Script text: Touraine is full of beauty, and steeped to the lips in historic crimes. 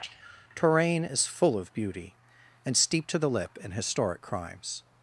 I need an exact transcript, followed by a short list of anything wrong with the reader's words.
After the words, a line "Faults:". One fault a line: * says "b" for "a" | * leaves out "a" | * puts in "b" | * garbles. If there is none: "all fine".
Touraine is full of beauty, and steeped to the lip in historic crimes.
Faults:
* says "lip" for "lips"